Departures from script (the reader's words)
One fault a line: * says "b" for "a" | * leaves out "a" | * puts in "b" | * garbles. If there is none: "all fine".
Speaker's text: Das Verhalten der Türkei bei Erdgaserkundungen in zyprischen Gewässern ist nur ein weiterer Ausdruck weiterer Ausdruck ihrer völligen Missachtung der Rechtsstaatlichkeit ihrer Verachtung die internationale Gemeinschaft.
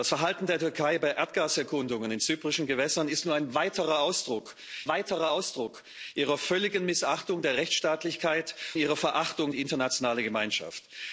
all fine